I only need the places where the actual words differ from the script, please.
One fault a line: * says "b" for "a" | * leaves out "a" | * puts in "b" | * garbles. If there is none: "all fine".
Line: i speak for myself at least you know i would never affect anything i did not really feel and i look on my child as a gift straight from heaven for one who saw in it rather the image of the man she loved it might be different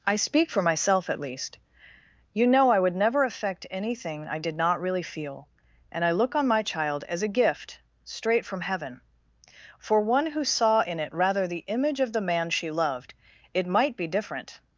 all fine